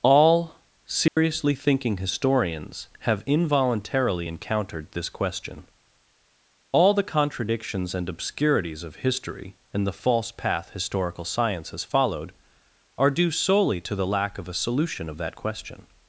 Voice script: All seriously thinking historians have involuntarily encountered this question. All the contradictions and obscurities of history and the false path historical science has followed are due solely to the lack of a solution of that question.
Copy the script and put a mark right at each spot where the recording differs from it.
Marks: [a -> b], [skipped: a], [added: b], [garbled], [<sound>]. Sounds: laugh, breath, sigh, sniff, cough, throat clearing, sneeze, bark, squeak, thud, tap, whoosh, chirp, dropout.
All seriously [dropout] thinking historians have involuntarily encountered this question. All the contradictions and obscurities of history and the false path historical science has followed are due solely to the lack of a solution of that question.